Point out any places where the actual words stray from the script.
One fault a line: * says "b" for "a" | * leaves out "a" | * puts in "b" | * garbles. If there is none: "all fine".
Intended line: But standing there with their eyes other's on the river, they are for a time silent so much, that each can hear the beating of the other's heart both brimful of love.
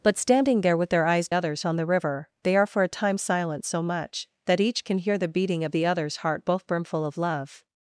all fine